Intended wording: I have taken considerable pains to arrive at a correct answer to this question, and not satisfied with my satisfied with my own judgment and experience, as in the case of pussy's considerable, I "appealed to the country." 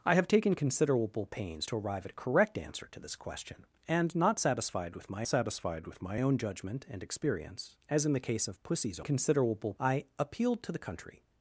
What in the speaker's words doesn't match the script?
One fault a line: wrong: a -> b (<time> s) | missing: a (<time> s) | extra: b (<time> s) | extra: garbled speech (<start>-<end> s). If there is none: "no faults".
no faults